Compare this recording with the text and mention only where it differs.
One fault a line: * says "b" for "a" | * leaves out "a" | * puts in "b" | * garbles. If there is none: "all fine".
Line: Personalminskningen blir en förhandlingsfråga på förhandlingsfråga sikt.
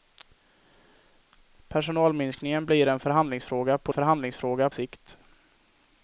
all fine